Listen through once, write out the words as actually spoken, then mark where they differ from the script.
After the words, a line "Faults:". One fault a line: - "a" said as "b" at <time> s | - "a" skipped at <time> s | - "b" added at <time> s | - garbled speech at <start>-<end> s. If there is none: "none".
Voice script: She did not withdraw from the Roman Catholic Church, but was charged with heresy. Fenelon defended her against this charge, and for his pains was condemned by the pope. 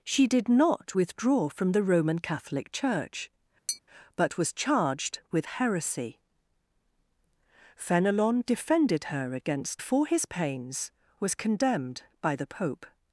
She did not withdraw from the Roman Catholic Church, but was charged with heresy. Fenelon defended her against for his pains was condemned by the pope.
Faults:
- "this charge and" skipped at 9.8 s